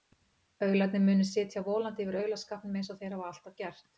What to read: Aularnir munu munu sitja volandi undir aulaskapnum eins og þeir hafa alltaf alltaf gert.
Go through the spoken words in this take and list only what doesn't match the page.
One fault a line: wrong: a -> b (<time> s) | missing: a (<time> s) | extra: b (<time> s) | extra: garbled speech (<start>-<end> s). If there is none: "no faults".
missing: munu (1.3 s)
wrong: undir -> yfir (2.1 s)
missing: alltaf (3.6 s)